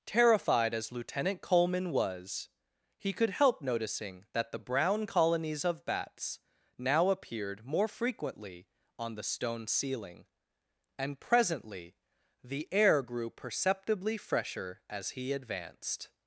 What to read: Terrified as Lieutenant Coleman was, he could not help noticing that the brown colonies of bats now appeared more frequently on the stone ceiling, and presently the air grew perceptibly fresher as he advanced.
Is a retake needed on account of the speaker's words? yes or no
yes